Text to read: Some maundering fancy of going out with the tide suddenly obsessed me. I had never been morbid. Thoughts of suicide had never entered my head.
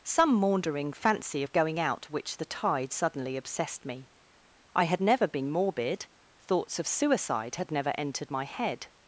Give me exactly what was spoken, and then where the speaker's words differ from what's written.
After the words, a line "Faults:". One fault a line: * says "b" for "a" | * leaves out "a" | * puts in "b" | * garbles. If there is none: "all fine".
Some maundering fancy of going out which the tide suddenly obsessed me. I had never been morbid. Thoughts of suicide had never entered my head.
Faults:
* says "which" for "with"